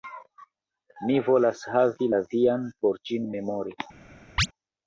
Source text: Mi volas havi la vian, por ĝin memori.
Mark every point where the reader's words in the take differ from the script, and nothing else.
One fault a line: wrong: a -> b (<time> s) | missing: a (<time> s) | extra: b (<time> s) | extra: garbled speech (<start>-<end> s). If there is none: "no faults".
no faults